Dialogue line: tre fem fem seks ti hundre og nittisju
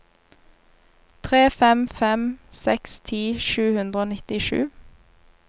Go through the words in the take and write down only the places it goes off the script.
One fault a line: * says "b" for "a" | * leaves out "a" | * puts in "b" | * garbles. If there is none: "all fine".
* puts in "sju"